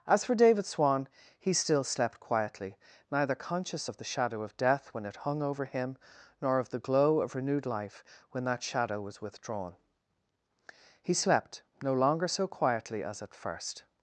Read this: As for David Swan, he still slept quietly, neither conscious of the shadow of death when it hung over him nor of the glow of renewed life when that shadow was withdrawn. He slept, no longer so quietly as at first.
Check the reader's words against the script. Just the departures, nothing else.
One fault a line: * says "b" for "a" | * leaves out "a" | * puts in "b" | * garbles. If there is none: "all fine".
all fine